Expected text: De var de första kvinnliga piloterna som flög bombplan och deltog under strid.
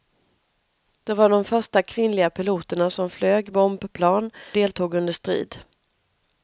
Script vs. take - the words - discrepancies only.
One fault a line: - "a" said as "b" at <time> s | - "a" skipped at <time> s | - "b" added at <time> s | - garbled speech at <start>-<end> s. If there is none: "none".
- "och" skipped at 4.3 s